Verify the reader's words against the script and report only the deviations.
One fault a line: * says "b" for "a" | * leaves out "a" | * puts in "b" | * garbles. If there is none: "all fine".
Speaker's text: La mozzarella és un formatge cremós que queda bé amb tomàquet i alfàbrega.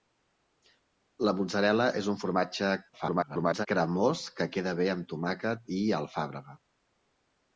* garbles